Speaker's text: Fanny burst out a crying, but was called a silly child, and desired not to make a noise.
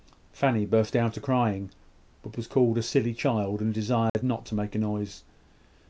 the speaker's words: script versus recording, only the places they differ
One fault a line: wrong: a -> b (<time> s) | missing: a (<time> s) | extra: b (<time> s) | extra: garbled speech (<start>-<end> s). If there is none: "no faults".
no faults